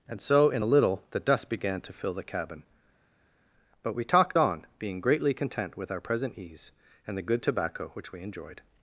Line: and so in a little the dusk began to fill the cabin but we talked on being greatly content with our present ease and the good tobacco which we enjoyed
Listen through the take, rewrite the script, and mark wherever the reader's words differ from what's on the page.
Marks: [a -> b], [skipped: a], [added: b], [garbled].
and so in a little the [dusk -> dust] began to fill the cabin but we talked on being greatly content with our present ease and the good tobacco which we enjoyed